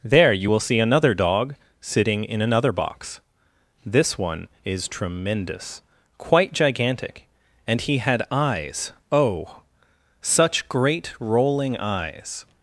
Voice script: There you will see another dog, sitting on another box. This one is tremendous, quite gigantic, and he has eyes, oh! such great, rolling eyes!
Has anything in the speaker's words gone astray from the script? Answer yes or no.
yes